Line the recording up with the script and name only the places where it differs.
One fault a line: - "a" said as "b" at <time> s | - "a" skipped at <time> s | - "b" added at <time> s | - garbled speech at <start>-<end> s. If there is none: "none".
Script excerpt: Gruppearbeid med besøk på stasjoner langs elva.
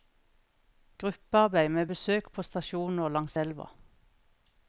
none